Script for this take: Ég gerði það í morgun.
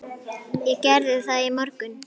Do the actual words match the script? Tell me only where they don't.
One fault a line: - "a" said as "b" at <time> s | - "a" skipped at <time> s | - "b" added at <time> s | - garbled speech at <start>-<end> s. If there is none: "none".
none